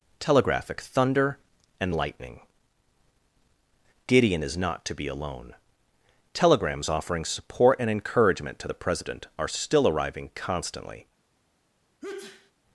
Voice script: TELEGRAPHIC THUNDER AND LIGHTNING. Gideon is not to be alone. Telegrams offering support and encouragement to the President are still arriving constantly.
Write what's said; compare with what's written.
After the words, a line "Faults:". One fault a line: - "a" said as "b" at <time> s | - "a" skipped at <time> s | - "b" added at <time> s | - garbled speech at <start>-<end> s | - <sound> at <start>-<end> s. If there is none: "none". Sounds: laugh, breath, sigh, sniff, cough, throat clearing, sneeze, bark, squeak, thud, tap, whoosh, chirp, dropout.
TELEGRAPHIC THUNDER AND LIGHTNING. Gideon is not to be alone. Telegrams offering support and encouragement to the President are still arriving constantly.
Faults:
- sneeze at 12.0-12.5 s